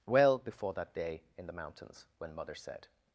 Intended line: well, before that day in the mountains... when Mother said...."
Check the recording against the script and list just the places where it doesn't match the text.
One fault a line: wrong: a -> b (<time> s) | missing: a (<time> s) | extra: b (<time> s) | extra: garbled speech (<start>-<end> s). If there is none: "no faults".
no faults